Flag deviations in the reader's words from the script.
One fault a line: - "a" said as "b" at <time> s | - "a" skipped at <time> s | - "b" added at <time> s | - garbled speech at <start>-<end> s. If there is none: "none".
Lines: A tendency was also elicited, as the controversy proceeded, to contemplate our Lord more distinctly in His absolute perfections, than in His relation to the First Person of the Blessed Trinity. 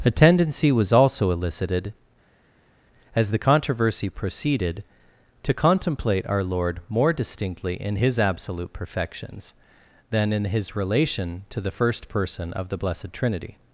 none